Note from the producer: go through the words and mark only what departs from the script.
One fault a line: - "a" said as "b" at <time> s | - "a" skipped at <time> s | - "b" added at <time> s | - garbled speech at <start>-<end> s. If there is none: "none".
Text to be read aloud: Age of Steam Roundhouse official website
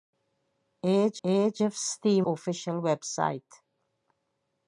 - "age" added at 1.2 s
- "Roundhouse" skipped at 2.2 s